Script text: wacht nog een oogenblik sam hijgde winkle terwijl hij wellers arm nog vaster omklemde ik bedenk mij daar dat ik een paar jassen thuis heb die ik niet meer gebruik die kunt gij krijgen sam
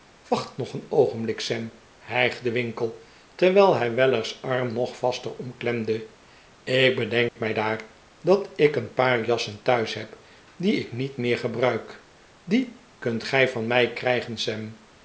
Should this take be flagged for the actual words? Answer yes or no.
yes